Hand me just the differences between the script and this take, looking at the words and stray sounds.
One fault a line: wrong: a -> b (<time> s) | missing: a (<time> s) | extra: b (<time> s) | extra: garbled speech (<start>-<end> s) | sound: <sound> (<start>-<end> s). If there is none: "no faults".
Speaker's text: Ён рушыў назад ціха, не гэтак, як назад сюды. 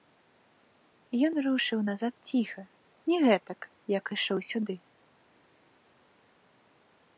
wrong: назад -> ішоў (4.2 s)